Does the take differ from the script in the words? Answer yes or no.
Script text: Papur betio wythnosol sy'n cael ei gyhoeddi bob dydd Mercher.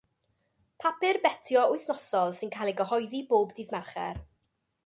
no